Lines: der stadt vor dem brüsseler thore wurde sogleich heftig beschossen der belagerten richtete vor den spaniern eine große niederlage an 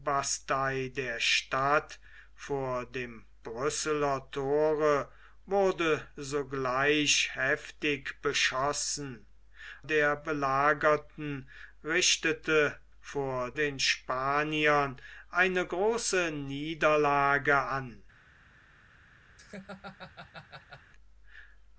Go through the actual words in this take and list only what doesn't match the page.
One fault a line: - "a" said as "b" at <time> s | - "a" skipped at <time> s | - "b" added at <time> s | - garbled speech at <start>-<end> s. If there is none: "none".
none